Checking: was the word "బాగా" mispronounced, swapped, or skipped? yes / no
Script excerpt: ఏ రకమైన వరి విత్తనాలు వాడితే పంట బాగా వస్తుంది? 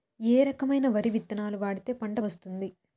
yes